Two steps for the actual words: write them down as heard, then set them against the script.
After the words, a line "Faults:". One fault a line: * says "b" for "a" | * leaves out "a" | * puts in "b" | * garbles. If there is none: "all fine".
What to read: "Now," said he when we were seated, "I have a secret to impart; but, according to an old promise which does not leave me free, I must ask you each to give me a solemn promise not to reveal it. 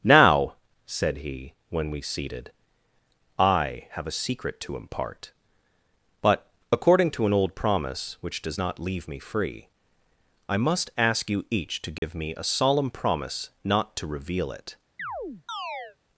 "Now," said he when we seated, "I have a secret to impart; but, according to an old promise which does not leave me free, I must ask you each to give me a solemn promise not to reveal it.
Faults:
* leaves out "were"